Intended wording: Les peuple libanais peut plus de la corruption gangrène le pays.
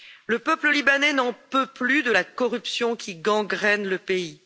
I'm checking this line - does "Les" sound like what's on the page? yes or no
no